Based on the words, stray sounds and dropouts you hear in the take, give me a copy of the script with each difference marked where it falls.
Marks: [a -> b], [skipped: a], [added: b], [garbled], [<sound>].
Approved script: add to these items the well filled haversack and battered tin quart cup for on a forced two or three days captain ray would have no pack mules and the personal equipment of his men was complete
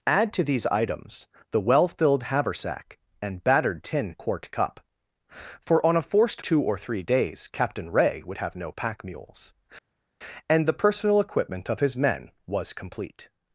add to these items the well filled haversack and battered tin quart cup for on a forced two or three days captain ray would have no pack mules and the personal equipment of his men was complete